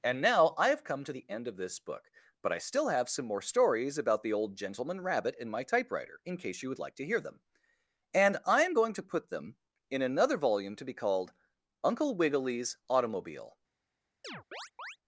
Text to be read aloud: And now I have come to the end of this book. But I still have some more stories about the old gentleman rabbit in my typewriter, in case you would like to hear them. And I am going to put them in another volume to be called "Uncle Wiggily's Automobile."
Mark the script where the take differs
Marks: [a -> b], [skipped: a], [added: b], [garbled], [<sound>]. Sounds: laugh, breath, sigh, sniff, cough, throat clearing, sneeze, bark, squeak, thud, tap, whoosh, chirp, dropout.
And now I have come to the end of this book. But I still have some more stories about the old gentleman rabbit in my typewriter, in case you would like to hear them. And I am going to put them in another volume to be called "Uncle Wiggily's Automobile." [chirp]